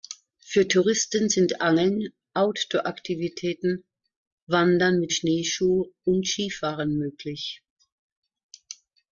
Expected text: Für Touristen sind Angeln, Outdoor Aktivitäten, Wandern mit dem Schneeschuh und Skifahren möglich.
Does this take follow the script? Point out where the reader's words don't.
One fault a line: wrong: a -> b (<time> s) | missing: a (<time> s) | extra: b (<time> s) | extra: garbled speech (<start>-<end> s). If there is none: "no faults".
missing: dem (5.1 s)